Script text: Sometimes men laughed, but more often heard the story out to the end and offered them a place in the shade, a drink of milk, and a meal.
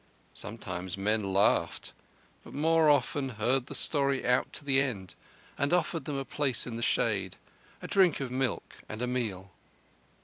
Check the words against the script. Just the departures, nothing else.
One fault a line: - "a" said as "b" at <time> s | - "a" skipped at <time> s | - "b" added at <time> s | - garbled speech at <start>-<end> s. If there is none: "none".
none